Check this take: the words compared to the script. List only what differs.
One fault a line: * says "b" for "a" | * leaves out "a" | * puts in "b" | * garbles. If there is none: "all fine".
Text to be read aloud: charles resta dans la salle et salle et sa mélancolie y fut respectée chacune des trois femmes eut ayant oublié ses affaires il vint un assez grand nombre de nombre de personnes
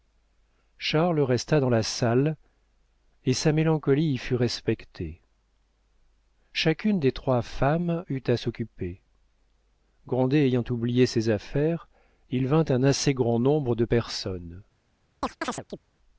* leaves out "salle et"
* puts in "à s'occuper grandet"
* leaves out "nombre de"